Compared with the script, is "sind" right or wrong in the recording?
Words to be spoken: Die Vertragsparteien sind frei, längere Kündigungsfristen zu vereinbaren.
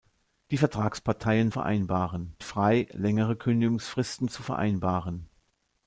wrong